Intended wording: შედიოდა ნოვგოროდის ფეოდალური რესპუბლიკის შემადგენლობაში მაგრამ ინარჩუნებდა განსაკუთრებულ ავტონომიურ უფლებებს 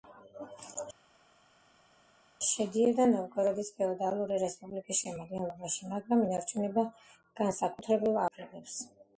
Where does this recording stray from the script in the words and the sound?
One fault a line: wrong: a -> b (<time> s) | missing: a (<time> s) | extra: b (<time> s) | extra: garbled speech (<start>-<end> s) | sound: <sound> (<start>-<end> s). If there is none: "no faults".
missing: ავტონომიურ (8.2 s)